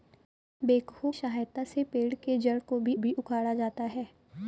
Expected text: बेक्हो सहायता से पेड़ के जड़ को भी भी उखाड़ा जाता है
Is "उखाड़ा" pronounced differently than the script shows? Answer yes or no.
no